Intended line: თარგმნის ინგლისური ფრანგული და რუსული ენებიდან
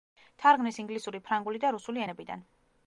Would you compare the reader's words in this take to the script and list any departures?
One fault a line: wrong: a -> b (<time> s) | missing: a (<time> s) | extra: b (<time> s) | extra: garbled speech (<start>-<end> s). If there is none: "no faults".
no faults